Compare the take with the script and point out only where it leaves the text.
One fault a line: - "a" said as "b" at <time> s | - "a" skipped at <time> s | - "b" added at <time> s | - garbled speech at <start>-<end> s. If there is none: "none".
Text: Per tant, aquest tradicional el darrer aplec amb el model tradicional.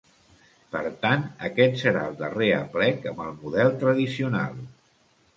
- "tradicional" said as "serà" at 1.8 s